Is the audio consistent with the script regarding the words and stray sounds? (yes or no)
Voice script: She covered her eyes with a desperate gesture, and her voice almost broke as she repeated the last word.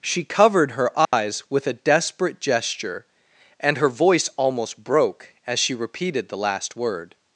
no